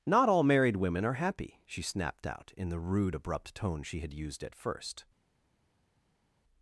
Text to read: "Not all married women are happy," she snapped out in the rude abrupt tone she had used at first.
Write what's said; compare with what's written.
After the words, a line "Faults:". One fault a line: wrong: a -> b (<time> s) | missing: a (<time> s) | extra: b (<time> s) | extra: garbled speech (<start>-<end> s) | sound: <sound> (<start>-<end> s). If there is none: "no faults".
"Not all married women are happy," she snapped out in the rude abrupt tone she had used at first.
Faults:
no faults